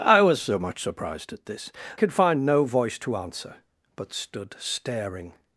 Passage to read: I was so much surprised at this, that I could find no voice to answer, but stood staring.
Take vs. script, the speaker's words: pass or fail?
fail